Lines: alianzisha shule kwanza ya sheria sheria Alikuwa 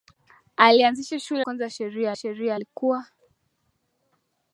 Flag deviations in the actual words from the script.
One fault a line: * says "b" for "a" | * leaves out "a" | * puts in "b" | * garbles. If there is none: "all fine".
all fine